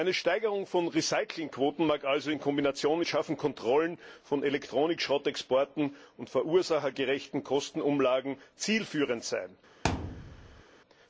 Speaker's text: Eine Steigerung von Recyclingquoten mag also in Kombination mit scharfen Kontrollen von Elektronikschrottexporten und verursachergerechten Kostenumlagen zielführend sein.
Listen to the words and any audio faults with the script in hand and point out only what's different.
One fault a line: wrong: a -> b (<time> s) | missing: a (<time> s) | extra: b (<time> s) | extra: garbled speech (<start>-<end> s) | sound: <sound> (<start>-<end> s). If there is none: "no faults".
sound: thud (9.8-10.6 s)